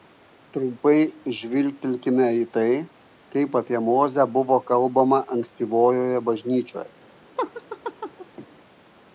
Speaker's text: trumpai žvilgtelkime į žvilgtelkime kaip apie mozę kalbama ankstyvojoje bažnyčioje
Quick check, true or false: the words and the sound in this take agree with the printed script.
false